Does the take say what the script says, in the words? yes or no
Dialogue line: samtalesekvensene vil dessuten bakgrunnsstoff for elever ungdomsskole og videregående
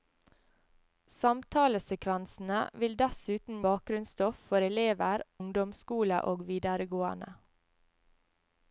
yes